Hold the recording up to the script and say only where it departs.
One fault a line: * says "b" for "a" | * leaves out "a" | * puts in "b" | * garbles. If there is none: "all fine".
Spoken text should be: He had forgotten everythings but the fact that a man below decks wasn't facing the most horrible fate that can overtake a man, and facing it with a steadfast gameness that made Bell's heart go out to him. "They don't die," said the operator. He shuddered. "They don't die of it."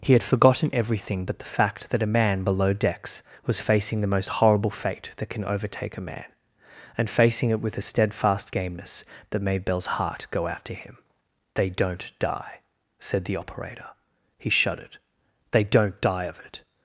* says "everything" for "everythings"
* says "was" for "wasn't"